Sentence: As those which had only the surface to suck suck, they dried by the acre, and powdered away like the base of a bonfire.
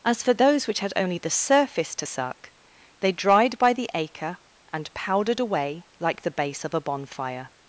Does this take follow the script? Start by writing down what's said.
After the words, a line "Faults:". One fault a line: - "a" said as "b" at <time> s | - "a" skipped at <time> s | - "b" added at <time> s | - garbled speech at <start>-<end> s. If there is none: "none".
As for those which had only the surface to suck, they dried by the acre, and powdered away like the base of a bonfire.
Faults:
- "for" added at 0.2 s
- "suck" skipped at 2.5 s